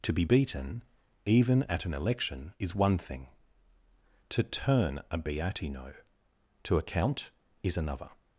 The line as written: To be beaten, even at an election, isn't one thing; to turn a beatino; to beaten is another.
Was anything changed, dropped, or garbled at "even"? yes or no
no